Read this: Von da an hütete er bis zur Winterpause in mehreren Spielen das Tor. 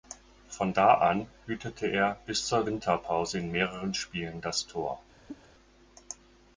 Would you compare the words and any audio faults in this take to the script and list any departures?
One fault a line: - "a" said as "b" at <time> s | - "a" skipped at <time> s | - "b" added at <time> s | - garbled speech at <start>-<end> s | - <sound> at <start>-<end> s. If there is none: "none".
- cough at 5.3-5.5 s